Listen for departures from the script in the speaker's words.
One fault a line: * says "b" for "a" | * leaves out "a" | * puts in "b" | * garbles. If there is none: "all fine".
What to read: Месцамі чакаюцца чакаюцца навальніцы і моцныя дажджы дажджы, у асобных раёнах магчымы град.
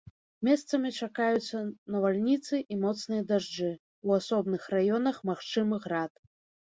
* leaves out "чакаюцца"
* leaves out "дажджы"